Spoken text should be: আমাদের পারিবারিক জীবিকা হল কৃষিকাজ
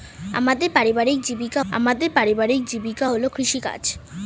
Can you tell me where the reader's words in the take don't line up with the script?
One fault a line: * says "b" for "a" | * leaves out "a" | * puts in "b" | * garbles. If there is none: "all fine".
* puts in "আমাদের পারিবারিক জীবিকা"